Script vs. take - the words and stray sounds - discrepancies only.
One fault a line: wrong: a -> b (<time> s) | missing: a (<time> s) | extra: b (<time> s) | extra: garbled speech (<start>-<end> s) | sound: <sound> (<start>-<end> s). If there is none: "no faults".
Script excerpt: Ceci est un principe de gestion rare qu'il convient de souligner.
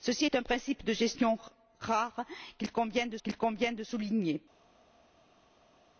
extra: qu'il convient de (3.2 s)